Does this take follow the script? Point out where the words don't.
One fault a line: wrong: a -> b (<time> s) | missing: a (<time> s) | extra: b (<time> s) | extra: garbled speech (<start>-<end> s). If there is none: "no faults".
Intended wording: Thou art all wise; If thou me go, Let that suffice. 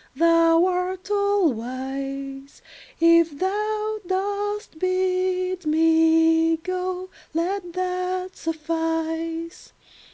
extra: dost bid (4.1 s)